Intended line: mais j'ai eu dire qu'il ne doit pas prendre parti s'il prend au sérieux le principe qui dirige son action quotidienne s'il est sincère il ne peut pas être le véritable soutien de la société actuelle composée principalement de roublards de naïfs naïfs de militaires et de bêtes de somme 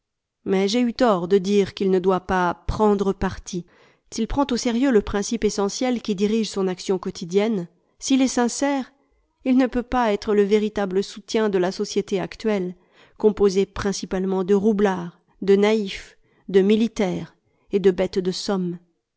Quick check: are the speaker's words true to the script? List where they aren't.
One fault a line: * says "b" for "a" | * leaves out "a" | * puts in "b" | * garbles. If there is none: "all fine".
* puts in "tort de"
* puts in "essentiel"
* leaves out "naïfs"